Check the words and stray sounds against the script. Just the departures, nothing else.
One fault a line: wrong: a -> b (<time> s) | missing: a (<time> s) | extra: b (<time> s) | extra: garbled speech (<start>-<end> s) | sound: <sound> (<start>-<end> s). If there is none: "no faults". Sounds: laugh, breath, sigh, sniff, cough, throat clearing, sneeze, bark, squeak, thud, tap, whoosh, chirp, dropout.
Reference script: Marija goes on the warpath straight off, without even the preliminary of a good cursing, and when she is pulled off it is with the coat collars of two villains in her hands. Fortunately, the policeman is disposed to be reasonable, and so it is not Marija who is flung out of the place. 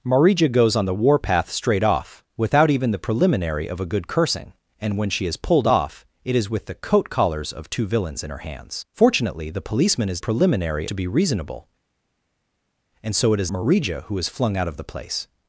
wrong: disposed -> preliminary (10.2 s)
missing: not (13.5 s)